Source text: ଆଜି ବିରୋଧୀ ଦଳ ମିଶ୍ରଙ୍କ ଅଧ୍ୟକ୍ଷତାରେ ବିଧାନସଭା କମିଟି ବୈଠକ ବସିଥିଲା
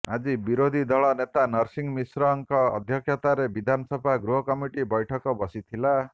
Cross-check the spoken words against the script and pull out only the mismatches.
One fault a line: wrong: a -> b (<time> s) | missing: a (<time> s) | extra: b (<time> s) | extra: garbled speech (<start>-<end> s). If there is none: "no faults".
extra: ନେତା ନରସିଂହ (1.2 s)
extra: ଗୃହ (4.2 s)